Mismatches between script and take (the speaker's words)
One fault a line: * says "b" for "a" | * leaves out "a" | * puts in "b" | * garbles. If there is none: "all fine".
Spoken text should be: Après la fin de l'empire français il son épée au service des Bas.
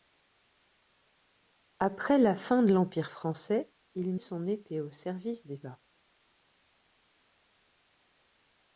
all fine